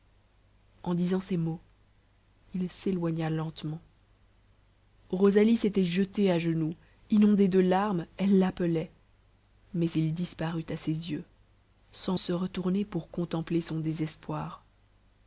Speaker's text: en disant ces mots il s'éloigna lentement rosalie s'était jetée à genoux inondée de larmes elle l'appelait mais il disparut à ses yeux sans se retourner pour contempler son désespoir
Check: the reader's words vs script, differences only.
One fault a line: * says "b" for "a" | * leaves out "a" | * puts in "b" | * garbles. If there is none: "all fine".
all fine